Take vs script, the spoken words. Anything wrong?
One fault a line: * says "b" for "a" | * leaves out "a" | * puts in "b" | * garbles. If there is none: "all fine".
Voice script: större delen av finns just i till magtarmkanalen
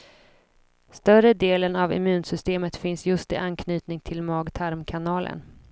* puts in "immunsystemet"
* puts in "anknytning"